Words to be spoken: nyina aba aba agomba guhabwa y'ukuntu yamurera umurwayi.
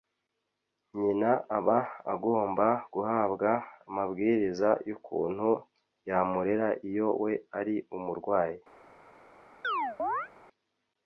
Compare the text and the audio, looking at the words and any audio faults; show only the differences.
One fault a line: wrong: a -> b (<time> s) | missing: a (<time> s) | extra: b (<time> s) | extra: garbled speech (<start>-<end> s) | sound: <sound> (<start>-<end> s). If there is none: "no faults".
missing: aba (1.8 s)
extra: amabwiriza (3.9 s)
extra: iyo we ari (6.9 s)
sound: chirp (9.6-10.3 s)